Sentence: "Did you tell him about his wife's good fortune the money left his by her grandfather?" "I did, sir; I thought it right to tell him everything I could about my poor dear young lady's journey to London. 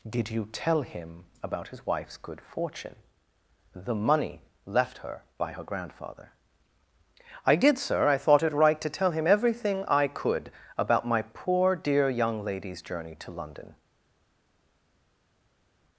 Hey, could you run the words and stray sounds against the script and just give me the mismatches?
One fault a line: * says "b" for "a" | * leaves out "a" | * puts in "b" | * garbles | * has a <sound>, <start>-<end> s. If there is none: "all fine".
* says "her" for "his"